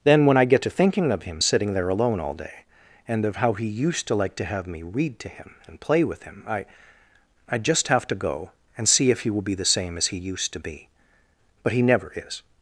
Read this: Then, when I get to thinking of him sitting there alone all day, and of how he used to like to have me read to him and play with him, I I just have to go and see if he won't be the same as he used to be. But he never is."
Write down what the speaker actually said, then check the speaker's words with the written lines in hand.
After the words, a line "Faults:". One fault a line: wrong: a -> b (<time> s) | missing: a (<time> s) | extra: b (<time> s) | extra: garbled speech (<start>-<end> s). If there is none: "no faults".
Then, when I get to thinking of him sitting there alone all day, and of how he used to like to have me read to him and play with him, I I just have to go and see if he will be the same as he used to be. But he never is."
Faults:
wrong: won't -> will (9.3 s)